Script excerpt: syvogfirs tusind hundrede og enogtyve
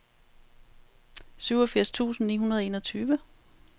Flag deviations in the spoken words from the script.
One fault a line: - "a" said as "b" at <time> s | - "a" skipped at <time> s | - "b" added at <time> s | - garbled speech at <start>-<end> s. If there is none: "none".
- "ni" added at 2.3 s